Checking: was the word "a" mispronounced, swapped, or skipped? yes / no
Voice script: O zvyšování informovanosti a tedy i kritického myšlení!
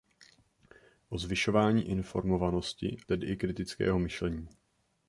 yes